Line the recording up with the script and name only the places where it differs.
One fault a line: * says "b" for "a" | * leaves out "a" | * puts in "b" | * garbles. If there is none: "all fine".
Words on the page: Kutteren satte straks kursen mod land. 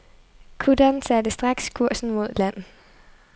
all fine